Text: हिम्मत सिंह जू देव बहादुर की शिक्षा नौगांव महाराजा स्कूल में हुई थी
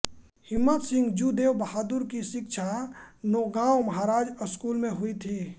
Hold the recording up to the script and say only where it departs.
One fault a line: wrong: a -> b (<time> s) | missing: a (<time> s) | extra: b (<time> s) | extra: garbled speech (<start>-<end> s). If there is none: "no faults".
no faults